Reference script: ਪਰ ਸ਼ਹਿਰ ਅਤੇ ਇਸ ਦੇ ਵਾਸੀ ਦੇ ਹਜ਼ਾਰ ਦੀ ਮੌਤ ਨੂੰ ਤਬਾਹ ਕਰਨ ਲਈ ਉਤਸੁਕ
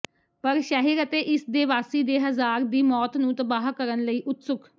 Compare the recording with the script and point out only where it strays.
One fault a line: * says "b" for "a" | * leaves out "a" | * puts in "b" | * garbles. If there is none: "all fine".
all fine